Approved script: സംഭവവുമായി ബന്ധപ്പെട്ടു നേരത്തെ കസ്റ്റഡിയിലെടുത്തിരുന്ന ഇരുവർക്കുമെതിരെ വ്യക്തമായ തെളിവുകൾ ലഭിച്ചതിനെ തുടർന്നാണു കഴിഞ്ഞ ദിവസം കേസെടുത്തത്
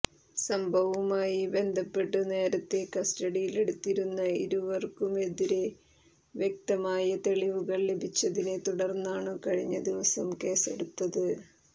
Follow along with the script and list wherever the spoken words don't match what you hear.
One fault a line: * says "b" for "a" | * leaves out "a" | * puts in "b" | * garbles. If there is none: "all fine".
all fine